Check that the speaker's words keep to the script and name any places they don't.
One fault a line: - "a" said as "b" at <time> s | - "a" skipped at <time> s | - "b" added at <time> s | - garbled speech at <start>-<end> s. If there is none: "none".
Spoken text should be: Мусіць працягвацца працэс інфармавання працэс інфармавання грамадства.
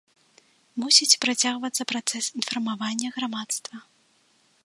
- "працэс інфармавання" skipped at 3.1 s